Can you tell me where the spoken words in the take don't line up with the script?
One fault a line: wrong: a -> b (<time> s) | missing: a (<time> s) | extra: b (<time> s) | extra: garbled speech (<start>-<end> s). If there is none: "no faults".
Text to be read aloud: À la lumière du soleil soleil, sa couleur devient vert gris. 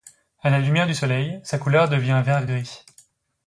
missing: soleil (1.4 s)